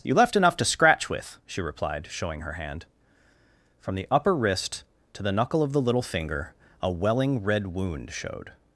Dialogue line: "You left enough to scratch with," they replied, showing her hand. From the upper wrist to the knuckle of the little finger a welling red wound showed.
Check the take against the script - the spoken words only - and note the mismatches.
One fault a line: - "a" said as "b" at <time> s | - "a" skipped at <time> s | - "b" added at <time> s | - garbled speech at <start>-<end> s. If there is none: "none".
- "they" said as "she" at 1.4 s